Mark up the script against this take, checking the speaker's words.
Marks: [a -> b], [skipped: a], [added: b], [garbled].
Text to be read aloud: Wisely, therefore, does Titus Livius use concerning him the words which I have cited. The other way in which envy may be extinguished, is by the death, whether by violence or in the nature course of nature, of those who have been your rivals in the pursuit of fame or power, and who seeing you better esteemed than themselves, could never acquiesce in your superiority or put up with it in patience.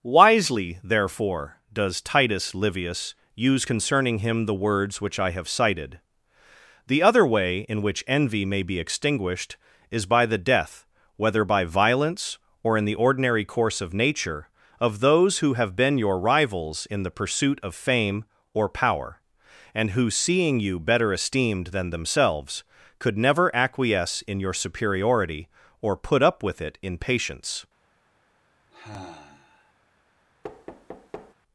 Wisely, therefore, does Titus Livius use concerning him the words which I have cited. The other way in which envy may be extinguished, is by the death, whether by violence or in the [nature -> ordinary] course of nature, of those who have been your rivals in the pursuit of fame or power, and who seeing you better esteemed than themselves, could never acquiesce in your superiority or put up with it in patience.